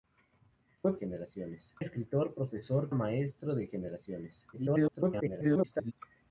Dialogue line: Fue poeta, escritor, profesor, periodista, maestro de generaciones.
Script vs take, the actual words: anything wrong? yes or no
yes